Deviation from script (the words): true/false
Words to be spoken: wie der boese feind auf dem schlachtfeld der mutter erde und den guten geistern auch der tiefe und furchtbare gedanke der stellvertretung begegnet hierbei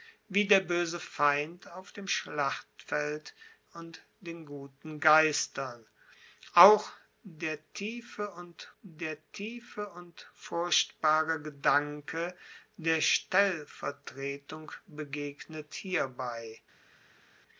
true